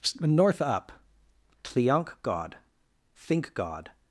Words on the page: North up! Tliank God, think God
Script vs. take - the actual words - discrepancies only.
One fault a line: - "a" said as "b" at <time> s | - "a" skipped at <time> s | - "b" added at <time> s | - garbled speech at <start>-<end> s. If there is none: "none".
none